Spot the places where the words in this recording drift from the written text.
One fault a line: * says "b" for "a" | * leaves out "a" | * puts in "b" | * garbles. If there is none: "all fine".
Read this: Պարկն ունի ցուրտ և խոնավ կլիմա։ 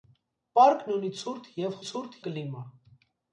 * says "ցուրտ" for "խոնավ"